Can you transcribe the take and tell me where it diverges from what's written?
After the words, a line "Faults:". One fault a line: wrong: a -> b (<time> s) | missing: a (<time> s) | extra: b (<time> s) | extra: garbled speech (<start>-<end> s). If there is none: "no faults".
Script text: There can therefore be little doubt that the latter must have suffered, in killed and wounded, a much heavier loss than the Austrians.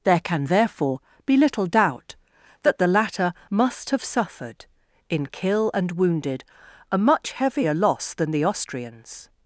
There can therefore be little doubt that the latter must have suffered, in kill and wounded, a much heavier loss than the Austrians.
Faults:
wrong: killed -> kill (5.3 s)